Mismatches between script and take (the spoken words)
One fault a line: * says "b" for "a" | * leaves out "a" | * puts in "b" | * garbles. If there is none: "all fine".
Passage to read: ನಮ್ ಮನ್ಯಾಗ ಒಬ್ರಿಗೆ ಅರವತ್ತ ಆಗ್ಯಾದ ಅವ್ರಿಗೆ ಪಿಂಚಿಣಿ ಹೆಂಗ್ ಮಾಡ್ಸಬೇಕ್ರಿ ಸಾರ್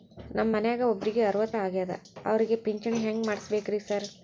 all fine